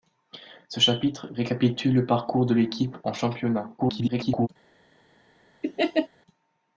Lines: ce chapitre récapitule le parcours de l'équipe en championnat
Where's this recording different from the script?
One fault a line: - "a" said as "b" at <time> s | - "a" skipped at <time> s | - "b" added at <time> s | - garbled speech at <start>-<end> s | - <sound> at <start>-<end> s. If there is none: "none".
- garbled speech at 3.8-4.5 s
- laugh at 5.6-6.1 s